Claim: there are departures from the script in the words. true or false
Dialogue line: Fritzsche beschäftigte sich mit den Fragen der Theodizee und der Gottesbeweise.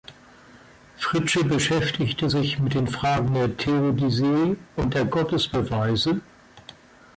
false